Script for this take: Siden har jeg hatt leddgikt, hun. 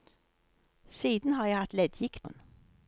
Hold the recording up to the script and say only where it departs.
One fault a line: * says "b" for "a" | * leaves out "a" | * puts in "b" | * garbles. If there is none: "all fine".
all fine